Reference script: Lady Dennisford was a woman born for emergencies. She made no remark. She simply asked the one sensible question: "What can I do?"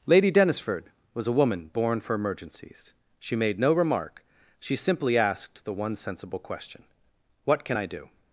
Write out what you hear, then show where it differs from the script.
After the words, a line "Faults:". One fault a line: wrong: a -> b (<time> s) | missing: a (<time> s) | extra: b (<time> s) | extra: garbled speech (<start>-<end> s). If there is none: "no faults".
Lady Dennisford was a woman born for emergencies. She made no remark. She simply asked the one sensible question: "What can I do?"
Faults:
no faults